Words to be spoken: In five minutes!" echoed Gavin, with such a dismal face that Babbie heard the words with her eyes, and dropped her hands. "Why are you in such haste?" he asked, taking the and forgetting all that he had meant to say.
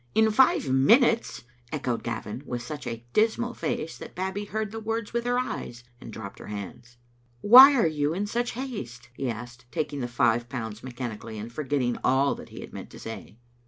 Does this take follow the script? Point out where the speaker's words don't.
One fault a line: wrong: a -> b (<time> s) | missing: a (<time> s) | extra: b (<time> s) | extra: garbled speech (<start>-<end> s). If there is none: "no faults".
extra: five pounds mechanically (10.1 s)